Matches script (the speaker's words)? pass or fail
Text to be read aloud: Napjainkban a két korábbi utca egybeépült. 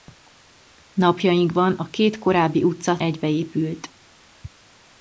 pass